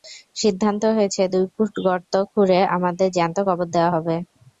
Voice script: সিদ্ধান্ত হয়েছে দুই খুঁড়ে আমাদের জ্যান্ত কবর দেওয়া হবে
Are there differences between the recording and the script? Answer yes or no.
yes